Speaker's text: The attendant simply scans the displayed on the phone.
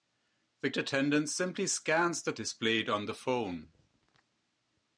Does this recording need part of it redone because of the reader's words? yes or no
no